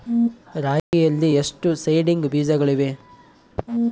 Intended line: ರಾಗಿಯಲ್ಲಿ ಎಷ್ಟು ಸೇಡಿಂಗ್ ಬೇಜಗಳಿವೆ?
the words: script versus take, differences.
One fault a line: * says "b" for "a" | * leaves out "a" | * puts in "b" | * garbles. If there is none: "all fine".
all fine